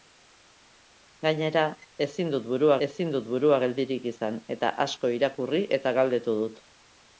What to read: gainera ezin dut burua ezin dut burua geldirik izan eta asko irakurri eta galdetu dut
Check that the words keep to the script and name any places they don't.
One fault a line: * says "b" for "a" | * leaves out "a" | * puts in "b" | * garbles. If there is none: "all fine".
all fine